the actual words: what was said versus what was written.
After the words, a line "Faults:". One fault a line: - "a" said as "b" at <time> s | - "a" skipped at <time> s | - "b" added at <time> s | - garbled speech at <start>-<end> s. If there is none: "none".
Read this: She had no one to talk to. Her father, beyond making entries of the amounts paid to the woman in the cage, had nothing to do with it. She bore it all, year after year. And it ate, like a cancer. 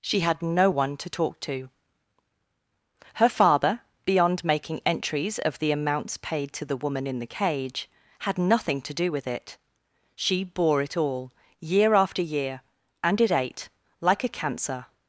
She had no one to talk to. Her father, beyond making entries of the amounts paid to the woman in the cage, had nothing to do with it. She bore it all, year after year. And it ate, like a cancer.
Faults:
none